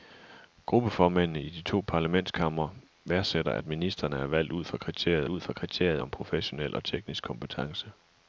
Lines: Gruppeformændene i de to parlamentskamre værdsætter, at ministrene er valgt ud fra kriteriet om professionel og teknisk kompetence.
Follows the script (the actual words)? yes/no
no